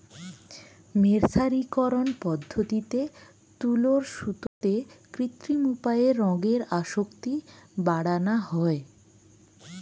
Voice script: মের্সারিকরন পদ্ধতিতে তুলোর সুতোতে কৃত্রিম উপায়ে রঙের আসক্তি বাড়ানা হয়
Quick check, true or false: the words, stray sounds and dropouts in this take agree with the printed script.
false